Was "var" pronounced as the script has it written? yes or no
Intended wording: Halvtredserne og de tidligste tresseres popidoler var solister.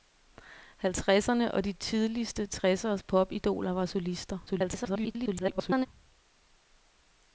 yes